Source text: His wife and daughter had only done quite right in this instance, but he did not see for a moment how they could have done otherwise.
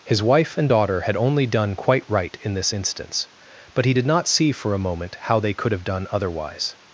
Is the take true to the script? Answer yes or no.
yes